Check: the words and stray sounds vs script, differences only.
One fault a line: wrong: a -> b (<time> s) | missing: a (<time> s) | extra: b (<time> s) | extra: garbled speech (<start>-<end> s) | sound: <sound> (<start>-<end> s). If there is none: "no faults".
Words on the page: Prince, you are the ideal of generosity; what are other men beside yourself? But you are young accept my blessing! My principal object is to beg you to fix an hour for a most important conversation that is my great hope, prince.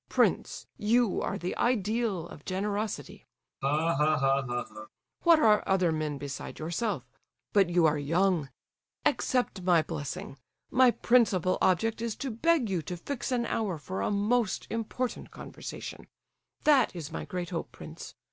sound: laugh (3.6-4.9 s)